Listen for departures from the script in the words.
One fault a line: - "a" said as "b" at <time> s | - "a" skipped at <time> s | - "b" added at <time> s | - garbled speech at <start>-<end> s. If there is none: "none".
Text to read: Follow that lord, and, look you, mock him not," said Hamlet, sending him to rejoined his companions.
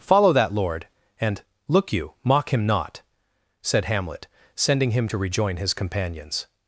- "rejoined" said as "rejoin" at 5.2 s